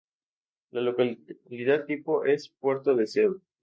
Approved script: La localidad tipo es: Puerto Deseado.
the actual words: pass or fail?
pass